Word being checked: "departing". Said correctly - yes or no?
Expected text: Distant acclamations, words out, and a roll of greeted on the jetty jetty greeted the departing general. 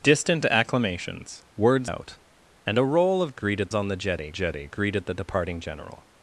yes